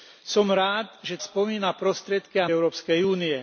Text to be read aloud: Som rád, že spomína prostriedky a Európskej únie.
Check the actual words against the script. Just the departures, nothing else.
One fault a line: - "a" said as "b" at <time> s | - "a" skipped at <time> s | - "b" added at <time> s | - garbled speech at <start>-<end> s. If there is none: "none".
none